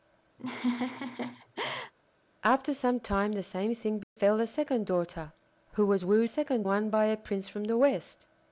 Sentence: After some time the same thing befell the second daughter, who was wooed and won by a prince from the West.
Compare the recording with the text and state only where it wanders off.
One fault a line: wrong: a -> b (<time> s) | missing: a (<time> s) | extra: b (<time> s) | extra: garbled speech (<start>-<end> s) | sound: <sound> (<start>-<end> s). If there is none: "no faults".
sound: laugh (0.4-1.9 s)
sound: dropout (4.0-4.2 s)
wrong: and -> second (6.3 s)